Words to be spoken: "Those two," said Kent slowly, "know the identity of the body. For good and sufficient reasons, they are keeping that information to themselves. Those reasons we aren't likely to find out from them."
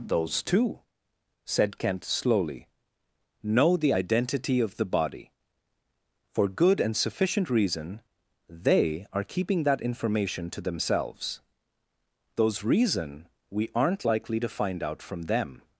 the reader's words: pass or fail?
fail